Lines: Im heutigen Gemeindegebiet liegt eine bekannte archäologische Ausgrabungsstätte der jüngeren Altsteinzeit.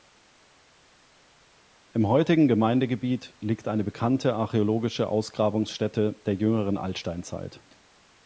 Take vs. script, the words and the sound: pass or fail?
pass